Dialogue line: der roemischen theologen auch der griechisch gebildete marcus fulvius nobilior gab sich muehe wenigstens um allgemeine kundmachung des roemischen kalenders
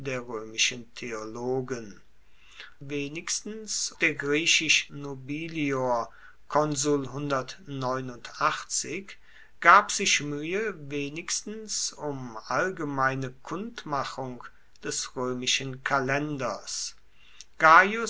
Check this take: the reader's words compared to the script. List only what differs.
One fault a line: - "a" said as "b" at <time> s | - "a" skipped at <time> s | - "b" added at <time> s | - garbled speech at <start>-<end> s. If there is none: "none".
- "auch" said as "wenigstens" at 2.9 s
- "gebildete marcus fulvius" skipped at 4.9 s